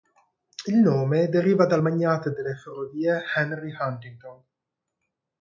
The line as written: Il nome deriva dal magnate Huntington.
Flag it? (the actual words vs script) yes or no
yes